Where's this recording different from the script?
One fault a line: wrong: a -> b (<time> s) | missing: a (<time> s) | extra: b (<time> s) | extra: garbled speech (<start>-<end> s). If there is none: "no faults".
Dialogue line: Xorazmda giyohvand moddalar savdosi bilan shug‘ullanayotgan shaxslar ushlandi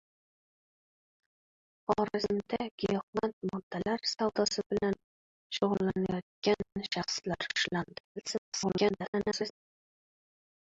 extra: garbled speech (8.2-9.5 s)